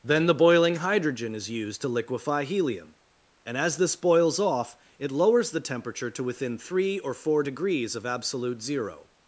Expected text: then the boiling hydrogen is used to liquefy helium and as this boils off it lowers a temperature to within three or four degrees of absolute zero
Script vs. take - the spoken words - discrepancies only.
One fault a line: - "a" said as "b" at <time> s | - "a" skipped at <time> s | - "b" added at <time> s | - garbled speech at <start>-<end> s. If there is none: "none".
- "a" said as "the" at 5.5 s